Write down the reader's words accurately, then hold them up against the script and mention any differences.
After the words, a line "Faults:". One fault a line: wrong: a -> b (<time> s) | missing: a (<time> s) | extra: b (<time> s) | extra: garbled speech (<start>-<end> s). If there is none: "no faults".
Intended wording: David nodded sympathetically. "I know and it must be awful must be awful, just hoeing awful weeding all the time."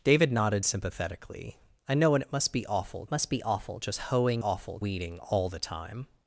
David nodded sympathetically. "I know and it must be awful must be awful, just hoeing awful weeding all the time."
Faults:
no faults